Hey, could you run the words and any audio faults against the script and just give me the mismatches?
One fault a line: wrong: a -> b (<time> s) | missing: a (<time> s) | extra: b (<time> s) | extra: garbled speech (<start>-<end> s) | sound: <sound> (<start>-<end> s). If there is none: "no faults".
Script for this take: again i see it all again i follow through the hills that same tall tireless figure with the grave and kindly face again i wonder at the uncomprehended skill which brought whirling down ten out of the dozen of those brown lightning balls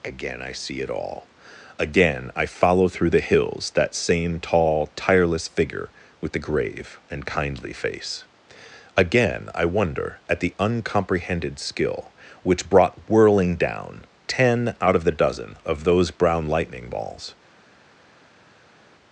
no faults